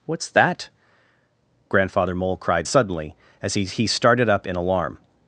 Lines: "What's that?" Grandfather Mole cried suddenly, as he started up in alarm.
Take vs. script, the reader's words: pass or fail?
fail